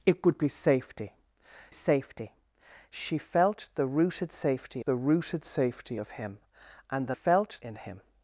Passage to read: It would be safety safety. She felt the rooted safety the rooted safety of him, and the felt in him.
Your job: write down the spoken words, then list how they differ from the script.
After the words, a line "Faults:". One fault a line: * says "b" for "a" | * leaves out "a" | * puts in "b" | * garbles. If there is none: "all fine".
It would be safety safety. She felt the rooted safety the rooted safety of him, and the felt in him.
Faults:
all fine